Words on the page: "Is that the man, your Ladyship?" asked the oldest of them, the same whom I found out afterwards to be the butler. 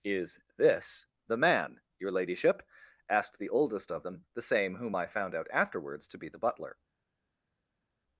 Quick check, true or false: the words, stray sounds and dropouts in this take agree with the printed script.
false